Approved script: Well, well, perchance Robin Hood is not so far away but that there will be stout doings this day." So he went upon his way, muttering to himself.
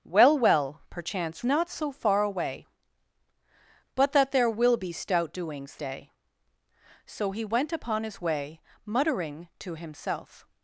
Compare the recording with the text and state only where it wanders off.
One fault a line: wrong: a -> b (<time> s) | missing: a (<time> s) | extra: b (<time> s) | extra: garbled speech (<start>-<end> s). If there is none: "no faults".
missing: Robin Hood is (1.4 s)
missing: this (5.8 s)